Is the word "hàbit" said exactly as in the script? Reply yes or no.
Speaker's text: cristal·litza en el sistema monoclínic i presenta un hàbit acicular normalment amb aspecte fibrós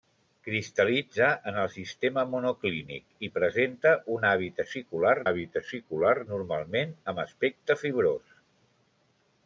yes